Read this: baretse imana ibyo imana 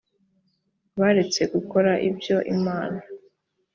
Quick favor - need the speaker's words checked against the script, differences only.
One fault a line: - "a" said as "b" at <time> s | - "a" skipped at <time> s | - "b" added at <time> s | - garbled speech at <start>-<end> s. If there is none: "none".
- "imana" said as "gukora" at 1.5 s